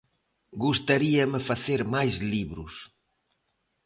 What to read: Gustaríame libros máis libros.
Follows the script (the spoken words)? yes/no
no